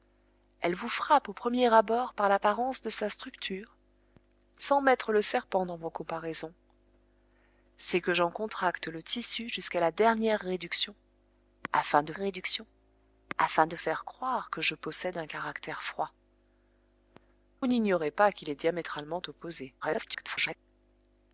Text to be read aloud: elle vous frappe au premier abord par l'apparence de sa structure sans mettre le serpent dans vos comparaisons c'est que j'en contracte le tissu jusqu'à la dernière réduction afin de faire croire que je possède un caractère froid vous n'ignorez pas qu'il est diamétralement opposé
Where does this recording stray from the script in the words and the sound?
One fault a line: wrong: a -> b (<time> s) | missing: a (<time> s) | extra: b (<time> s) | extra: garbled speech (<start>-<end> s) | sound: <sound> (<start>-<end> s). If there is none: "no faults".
extra: réduction afin de (12.1 s)
missing: vous (16.1 s)
extra: garbled speech (19.8-20.6 s)